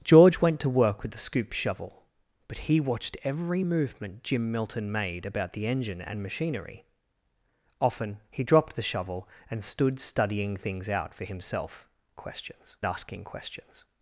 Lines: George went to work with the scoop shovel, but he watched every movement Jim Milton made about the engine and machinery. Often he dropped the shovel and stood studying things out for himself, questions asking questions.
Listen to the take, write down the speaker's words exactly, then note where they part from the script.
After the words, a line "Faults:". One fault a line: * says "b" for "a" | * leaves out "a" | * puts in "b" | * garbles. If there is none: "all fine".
George went to work with the scoop shovel, but he watched every movement Jim Milton made about the engine and machinery. Often he dropped the shovel and stood studying things out for himself, questions asking questions.
Faults:
all fine